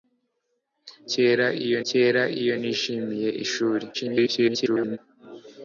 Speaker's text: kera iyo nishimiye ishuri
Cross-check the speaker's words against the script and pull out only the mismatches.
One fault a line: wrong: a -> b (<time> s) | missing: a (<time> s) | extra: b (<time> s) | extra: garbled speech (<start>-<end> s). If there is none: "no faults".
extra: kera iyo (1.9 s)
extra: garbled speech (3.9-5.0 s)